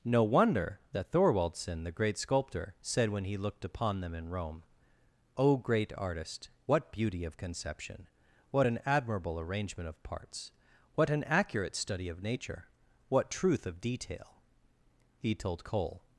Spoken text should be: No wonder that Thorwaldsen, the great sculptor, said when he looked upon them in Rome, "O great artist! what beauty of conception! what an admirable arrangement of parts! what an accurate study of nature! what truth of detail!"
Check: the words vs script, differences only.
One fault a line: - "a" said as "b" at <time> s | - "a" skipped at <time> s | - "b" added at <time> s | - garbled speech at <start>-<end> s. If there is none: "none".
- "He told Cole" added at 15.2 s